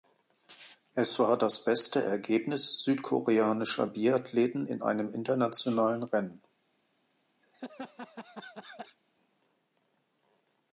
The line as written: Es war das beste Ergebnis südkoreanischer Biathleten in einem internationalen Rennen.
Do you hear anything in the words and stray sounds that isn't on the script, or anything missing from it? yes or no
yes